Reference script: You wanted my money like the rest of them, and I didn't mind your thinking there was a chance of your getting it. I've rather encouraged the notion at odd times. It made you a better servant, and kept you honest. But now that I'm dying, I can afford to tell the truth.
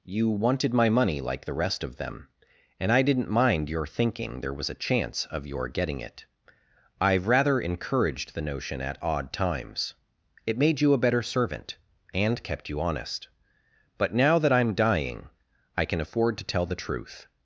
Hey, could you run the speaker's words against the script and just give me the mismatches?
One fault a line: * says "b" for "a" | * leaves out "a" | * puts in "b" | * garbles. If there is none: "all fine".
all fine